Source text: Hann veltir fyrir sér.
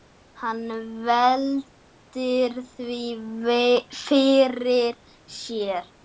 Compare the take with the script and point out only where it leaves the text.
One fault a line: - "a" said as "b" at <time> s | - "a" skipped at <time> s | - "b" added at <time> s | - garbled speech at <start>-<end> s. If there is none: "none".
- "því" added at 2.7 s